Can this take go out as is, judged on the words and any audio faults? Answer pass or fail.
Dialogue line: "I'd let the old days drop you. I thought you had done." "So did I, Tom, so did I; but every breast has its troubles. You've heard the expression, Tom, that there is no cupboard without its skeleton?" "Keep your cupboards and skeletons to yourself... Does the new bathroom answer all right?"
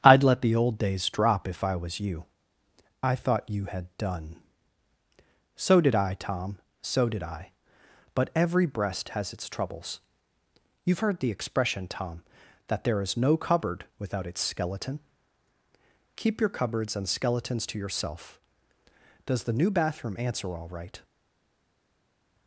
fail